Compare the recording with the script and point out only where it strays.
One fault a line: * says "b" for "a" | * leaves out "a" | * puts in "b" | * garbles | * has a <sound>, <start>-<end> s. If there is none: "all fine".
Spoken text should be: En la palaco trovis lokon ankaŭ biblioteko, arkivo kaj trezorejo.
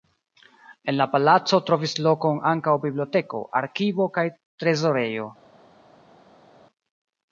all fine